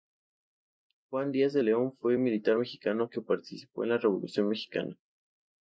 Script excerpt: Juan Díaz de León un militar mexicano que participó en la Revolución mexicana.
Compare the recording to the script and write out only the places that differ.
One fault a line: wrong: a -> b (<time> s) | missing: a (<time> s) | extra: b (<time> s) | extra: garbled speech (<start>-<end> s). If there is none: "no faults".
extra: fue (1.9 s)